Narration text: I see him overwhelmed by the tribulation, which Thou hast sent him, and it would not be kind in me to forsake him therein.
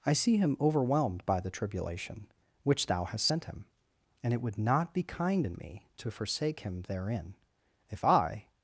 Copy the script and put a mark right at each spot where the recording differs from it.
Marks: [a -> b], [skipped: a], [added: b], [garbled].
I see him overwhelmed by the tribulation, which Thou hast sent him, and it would not be kind in me to forsake him therein. [added: If I]